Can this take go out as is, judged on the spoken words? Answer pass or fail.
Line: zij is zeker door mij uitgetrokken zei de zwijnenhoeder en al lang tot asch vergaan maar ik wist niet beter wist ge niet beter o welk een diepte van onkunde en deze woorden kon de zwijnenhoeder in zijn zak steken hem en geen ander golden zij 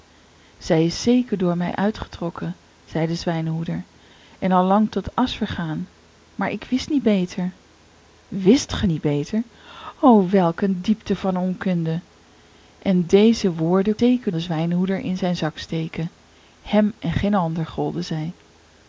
fail